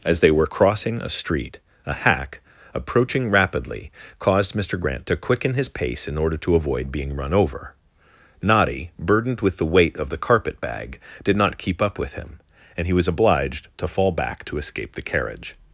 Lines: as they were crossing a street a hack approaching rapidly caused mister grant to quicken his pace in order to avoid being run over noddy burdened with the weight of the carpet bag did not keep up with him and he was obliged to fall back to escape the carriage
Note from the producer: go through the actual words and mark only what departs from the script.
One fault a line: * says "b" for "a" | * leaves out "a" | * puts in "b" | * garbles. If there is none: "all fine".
all fine